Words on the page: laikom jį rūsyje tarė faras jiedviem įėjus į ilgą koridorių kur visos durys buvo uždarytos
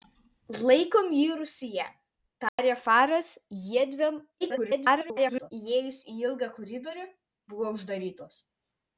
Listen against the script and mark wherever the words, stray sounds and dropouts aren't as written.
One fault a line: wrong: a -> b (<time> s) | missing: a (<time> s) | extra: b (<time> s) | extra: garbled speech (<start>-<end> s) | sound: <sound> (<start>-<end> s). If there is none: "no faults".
sound: dropout (2.5-2.6 s)
extra: garbled speech (4.4-5.5 s)
missing: kur visos durys (7.1 s)